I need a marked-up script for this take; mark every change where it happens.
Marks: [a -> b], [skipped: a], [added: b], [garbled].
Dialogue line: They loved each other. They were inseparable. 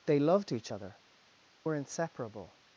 They loved each other. [skipped: They] were inseparable.